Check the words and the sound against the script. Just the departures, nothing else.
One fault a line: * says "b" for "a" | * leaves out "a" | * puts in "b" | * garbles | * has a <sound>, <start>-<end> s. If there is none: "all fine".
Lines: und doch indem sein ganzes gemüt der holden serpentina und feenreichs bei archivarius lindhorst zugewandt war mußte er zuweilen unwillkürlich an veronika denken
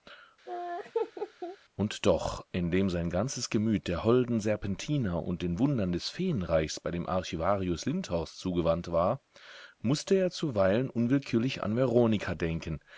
* has a laugh, 0.5-1.6 s
* puts in "den wundern des"
* puts in "dem"